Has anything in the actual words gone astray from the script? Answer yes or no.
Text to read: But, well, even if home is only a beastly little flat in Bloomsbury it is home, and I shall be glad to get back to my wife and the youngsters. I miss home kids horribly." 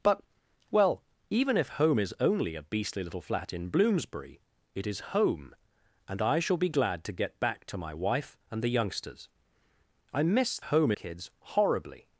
no